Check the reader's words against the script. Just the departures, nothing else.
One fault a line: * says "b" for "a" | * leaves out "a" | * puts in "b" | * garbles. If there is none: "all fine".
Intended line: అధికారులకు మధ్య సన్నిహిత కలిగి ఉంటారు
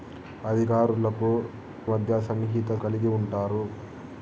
all fine